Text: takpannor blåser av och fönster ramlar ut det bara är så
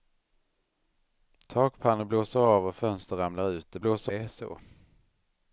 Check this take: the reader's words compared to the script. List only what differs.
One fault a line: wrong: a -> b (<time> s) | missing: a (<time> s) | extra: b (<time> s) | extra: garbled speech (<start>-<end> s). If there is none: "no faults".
wrong: bara -> blåser (3.8 s)